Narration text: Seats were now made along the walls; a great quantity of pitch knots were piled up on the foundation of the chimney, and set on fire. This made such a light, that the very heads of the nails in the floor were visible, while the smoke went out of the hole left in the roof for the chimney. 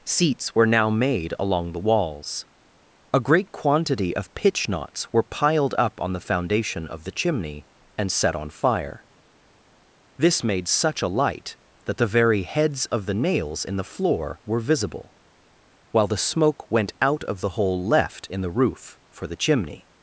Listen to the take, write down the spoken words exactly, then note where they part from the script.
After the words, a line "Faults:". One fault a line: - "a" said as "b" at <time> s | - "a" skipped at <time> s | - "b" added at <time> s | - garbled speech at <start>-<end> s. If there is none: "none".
Seats were now made along the walls; a great quantity of pitch knots were piled up on the foundation of the chimney, and set on fire. This made such a light, that the very heads of the nails in the floor were visible, while the smoke went out of the hole left in the roof for the chimney.
Faults:
none